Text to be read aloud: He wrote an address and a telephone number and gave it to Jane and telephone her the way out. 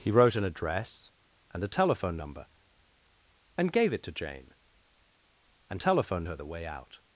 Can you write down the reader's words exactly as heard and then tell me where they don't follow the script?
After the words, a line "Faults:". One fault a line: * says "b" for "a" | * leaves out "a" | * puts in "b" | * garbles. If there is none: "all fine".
He wrote an address and a telephone number and gave it to Jane and telephone her the way out.
Faults:
all fine